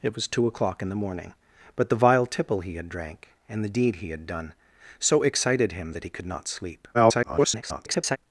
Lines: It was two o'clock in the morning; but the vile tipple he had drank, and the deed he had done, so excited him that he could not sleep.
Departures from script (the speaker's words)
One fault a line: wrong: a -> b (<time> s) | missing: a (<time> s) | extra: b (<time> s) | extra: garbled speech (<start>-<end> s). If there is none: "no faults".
extra: garbled speech (6.9-8.2 s)